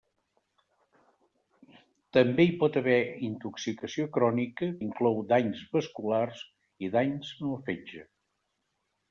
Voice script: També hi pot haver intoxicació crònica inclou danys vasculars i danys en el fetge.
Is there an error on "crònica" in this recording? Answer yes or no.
no